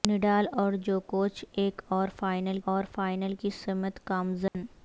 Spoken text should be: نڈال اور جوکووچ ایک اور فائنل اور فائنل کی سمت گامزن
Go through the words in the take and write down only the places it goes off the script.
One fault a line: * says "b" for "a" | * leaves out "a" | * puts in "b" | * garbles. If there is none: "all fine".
all fine